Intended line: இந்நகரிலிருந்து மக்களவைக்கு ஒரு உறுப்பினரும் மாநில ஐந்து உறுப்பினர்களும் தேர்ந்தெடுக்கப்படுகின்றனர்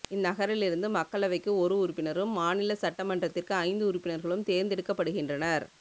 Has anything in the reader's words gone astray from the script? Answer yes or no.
yes